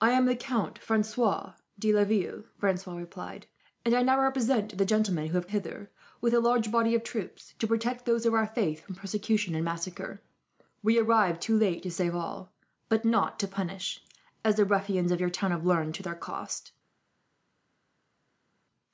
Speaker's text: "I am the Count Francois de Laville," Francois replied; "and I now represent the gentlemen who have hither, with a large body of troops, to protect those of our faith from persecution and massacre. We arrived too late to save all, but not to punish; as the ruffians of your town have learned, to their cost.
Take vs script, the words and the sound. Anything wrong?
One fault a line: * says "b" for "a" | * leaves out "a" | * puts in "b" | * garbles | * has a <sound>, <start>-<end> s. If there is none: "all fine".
all fine